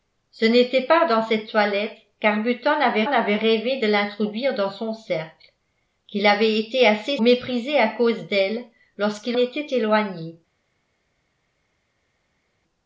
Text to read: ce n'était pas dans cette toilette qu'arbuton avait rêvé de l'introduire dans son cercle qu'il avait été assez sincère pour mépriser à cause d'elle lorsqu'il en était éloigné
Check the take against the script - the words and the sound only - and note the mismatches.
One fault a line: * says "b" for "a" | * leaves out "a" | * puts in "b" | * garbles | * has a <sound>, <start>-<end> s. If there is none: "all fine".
* puts in "avait"
* leaves out "sincère pour"
* leaves out "en"